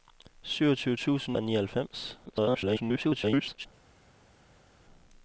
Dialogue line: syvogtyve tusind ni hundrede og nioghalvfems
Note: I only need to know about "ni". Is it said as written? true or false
false